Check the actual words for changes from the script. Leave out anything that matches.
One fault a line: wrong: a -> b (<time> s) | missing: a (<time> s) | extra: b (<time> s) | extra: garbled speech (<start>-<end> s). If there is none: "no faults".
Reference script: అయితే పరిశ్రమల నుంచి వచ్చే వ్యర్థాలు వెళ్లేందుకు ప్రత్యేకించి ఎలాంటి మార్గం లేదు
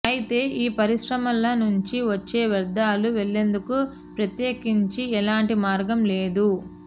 extra: ఈ (0.6 s)